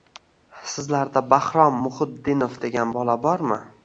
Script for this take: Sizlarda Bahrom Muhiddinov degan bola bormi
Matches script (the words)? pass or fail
pass